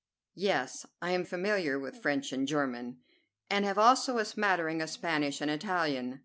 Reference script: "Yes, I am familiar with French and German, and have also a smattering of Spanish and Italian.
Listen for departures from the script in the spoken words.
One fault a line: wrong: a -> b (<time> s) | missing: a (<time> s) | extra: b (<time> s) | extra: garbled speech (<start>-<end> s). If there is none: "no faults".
no faults